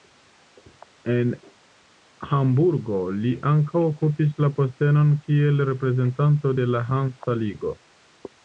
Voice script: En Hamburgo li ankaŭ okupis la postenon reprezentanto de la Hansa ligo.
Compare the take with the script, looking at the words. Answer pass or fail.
fail